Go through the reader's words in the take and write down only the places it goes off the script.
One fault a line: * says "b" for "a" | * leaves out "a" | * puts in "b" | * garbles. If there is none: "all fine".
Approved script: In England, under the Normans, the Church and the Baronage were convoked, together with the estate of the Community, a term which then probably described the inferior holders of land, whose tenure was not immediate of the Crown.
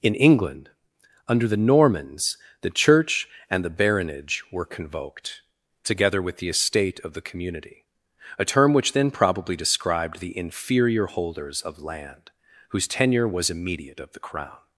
* leaves out "not"